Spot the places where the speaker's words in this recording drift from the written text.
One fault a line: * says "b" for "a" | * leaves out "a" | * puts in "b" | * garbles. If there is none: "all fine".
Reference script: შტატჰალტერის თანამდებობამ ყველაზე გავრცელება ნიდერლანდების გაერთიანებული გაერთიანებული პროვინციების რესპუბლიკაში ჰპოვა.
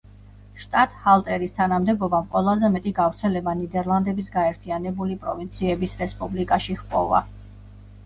* puts in "მეტი"
* leaves out "გაერთიანებული"